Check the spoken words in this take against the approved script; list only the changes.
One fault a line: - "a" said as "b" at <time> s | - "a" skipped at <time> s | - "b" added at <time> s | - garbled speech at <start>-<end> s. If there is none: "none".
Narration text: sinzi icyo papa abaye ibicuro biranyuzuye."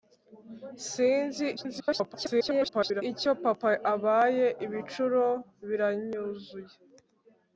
- garbled speech at 1.6-3.0 s